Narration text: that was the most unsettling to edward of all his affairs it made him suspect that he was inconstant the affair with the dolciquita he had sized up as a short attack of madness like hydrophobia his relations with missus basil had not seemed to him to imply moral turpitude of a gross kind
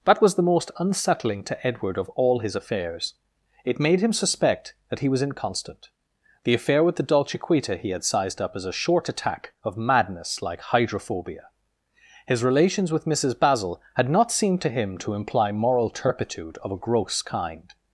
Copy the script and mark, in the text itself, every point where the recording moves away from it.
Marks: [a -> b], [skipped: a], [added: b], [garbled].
that was the most unsettling to edward of all his affairs it made him suspect that he was inconstant the affair with the dolciquita he had sized up as a short attack of madness like hydrophobia his relations with missus basil had not seemed to him to imply moral turpitude of a gross kind